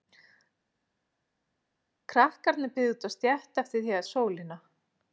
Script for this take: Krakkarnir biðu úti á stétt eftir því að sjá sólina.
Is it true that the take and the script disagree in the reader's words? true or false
true